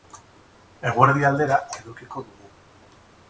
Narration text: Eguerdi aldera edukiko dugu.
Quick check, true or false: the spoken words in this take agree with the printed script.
true